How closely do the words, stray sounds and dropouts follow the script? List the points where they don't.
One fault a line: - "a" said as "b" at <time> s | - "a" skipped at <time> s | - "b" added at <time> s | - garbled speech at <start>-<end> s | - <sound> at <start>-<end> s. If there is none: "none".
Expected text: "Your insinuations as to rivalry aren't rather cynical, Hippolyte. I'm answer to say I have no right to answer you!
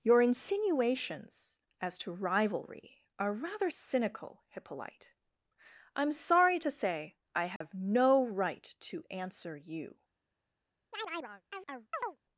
- "aren't" said as "are" at 3.2 s
- "answer" said as "sorry" at 6.1 s
- dropout at 7.6-7.6 s
- chirp at 10.9-12.2 s